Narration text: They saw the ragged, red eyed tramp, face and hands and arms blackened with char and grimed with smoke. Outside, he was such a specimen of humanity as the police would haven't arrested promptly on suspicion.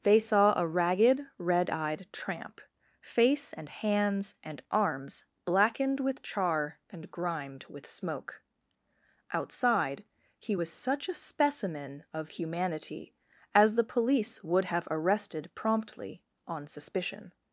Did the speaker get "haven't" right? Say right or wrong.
wrong